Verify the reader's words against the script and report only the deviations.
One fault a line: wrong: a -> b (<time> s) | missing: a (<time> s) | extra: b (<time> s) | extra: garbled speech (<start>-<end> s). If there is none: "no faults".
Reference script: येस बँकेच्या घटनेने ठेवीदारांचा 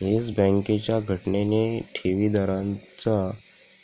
no faults